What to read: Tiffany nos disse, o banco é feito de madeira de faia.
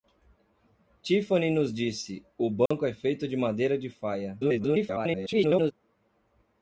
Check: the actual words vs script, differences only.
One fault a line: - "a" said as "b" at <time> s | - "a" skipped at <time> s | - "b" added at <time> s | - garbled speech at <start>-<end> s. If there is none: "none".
- garbled speech at 4.4-5.7 s